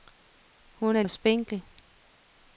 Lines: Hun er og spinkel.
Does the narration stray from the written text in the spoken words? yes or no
no